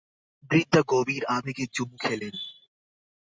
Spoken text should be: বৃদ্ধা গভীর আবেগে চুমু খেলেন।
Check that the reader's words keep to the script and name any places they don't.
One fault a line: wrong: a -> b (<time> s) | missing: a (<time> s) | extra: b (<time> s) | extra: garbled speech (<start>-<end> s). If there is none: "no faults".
no faults